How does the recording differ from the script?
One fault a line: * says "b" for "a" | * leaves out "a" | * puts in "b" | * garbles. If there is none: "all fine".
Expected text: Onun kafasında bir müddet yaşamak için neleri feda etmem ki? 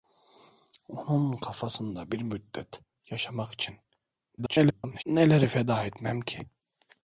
* garbles